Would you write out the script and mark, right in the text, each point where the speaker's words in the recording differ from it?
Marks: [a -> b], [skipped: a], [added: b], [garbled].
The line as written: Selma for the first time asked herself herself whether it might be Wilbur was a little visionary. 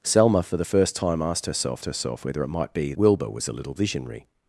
Selma for the first time asked herself herself whether it might be Wilbur was a little visionary.